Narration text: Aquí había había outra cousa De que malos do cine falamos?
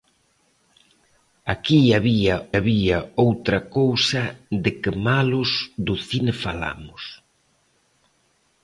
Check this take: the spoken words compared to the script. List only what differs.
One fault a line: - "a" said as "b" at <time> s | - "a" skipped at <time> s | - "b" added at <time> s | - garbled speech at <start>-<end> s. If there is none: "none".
none